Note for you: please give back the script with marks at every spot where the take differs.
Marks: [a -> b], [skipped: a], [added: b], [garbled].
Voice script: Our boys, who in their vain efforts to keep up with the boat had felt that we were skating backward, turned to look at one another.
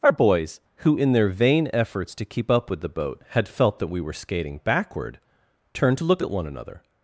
Our boys, who in their vain efforts to keep up with the boat had felt that we were skating backward, turned to look at one another.